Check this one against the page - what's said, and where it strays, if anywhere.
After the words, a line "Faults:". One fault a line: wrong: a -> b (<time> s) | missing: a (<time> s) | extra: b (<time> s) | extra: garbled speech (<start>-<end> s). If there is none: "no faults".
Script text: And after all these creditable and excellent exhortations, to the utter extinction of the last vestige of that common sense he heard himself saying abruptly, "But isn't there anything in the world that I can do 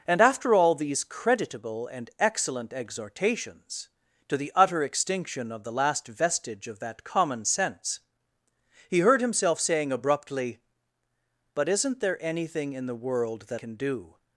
And after all these creditable and excellent exhortations, to the utter extinction of the last vestige of that common sense he heard himself saying abruptly, "But isn't there anything in the world that can do
Faults:
missing: I (13.6 s)